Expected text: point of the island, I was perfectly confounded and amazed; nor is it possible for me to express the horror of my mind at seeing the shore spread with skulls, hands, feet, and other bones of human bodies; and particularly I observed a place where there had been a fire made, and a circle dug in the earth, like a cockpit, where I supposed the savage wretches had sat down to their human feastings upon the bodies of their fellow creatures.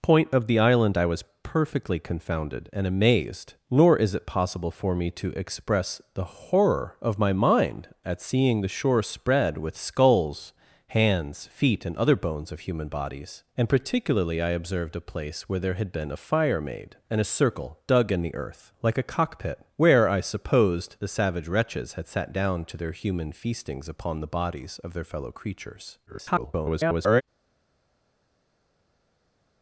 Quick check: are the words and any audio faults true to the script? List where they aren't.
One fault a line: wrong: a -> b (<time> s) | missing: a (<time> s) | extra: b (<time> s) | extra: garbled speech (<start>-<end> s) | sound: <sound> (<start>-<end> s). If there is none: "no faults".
extra: garbled speech (26.1-27.2 s)